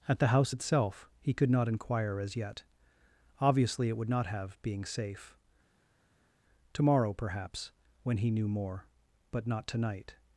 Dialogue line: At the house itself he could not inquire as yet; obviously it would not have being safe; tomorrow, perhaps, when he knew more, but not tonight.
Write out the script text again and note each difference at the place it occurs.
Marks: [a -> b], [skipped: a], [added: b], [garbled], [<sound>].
At the house itself he could not inquire as yet; obviously it would not have being safe; tomorrow, perhaps, when he knew more, but not tonight.